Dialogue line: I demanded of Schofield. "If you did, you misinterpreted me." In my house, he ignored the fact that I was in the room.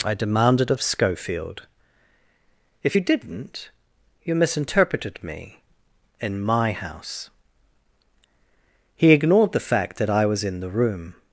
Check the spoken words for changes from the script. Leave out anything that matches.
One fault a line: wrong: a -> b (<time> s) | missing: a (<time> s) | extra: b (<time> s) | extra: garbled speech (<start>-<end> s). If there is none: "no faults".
wrong: did -> didn't (3.0 s)